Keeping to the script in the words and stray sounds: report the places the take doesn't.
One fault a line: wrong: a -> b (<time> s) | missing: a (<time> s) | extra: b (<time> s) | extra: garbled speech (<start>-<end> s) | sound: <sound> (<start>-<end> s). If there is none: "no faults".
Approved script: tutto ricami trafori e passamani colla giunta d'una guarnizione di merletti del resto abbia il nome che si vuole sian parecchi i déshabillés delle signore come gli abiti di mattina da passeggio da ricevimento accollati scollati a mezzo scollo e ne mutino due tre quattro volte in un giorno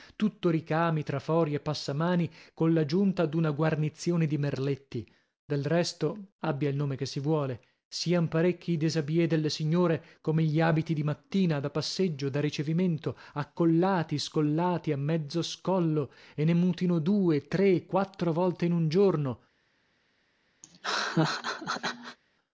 sound: laugh (20.6-22.2 s)